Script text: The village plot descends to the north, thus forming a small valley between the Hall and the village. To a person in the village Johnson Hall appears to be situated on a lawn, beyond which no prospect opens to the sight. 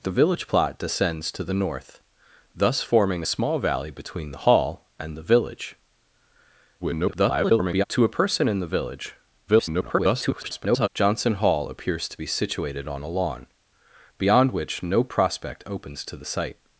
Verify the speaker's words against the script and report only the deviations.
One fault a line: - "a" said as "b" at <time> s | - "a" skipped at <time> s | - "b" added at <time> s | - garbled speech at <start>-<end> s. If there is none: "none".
- garbled speech at 6.8-7.8 s
- garbled speech at 9.5-10.9 s